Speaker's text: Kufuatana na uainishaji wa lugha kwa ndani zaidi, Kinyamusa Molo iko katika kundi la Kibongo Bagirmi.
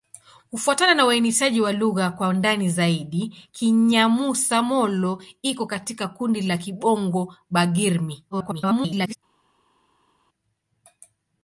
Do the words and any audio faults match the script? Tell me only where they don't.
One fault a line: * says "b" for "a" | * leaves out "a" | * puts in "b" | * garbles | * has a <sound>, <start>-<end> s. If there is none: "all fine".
* garbles